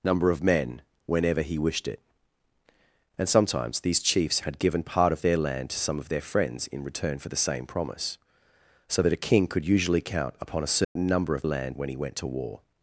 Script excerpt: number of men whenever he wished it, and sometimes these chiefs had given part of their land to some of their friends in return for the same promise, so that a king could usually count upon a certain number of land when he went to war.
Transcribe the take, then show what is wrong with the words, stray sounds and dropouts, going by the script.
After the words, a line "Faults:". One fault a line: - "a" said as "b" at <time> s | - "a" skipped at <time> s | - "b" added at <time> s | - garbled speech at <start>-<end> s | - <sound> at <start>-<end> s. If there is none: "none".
number of men whenever he wished it, and sometimes these chiefs had given part of their land to some of their friends in return for the same promise, so that a king could usually count upon a certain number of land when he went to war.
Faults:
- dropout at 10.8-11.0 s